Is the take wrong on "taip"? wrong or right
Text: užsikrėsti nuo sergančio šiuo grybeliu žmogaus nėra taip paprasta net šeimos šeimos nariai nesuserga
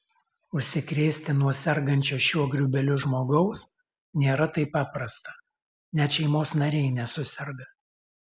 right